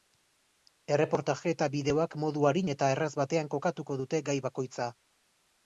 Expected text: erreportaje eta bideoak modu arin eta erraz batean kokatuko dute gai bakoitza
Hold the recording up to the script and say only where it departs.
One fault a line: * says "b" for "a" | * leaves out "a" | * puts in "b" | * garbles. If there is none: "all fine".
all fine